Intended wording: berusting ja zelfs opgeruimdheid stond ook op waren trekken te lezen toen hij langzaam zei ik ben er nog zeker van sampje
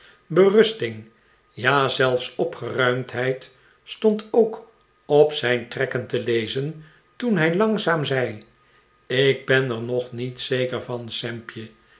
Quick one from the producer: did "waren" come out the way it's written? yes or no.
no